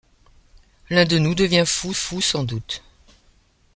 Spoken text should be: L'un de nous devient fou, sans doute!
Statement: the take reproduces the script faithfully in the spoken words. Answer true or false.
false